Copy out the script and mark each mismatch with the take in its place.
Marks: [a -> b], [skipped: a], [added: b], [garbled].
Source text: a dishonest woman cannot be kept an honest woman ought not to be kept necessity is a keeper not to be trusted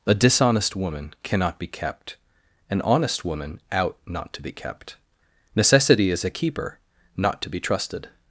a dishonest woman cannot be kept an honest woman [ought -> out] not to be kept necessity is a keeper not to be trusted